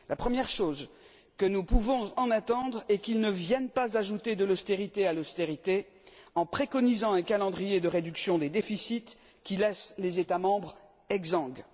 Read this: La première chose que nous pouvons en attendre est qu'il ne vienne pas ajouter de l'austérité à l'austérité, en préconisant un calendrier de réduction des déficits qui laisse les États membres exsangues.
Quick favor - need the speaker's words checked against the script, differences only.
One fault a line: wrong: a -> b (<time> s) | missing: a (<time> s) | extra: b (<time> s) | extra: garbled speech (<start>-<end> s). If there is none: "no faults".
no faults